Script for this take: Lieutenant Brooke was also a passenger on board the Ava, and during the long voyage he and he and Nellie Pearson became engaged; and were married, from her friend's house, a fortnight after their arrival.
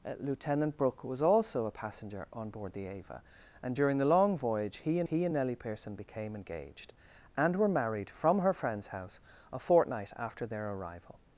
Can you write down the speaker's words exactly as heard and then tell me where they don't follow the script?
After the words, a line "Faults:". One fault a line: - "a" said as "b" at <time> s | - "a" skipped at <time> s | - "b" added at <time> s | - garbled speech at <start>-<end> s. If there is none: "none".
Lieutenant Brooke was also a passenger on board the Ava, and during the long voyage he and he and Nellie Pearson became engaged; and were married, from her friend's house, a fortnight after their arrival.
Faults:
none